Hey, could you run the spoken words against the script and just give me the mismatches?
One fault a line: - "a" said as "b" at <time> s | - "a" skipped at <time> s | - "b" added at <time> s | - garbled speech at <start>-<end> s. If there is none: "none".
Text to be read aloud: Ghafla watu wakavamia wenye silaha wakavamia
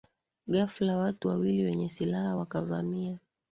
- "wakavamia" said as "wawili" at 1.2 s